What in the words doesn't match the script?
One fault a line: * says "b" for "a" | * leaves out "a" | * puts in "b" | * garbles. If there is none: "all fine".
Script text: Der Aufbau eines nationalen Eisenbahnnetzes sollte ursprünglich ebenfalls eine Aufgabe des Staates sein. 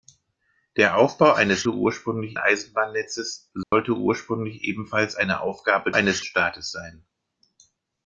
* says "ursprünglich" for "nationalen"
* says "eines" for "des"